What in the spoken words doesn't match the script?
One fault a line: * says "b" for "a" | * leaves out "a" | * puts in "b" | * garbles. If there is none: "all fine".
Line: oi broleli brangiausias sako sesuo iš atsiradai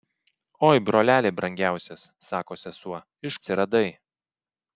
all fine